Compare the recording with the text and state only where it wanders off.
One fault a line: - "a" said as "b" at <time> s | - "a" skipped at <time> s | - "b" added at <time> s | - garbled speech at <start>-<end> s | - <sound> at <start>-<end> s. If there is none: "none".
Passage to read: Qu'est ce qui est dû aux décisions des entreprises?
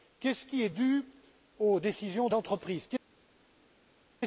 - "des" skipped at 2.3 s